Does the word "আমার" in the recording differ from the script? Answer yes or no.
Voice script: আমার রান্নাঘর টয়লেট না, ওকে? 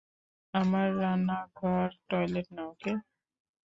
no